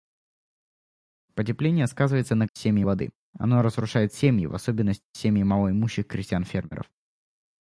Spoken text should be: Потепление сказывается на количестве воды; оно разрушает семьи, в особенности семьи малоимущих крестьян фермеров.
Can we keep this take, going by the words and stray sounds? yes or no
no